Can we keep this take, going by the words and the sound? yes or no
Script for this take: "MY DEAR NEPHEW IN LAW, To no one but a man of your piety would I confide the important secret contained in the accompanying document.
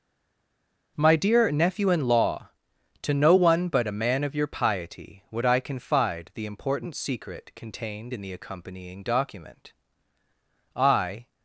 no